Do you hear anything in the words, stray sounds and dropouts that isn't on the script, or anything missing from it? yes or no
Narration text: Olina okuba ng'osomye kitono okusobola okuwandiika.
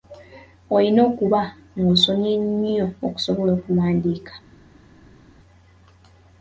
yes